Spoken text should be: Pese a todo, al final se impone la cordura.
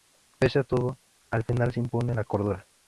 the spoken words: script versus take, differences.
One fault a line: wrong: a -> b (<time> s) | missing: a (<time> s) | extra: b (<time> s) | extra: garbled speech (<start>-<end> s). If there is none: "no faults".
no faults